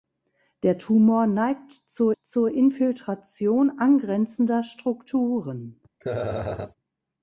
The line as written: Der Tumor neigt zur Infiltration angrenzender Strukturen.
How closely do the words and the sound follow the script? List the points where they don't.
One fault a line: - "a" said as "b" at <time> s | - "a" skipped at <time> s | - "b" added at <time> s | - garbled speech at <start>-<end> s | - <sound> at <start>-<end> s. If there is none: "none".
- "zur" added at 2.1 s
- laugh at 6.0-6.7 s